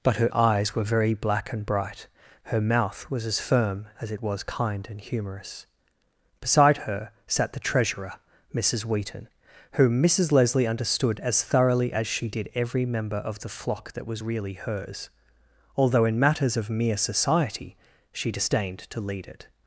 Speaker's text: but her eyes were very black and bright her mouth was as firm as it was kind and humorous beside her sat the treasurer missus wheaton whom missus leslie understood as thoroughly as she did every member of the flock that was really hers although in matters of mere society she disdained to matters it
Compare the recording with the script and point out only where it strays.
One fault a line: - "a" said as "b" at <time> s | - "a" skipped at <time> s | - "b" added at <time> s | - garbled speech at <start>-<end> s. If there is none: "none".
- "matters" said as "lead" at 19.0 s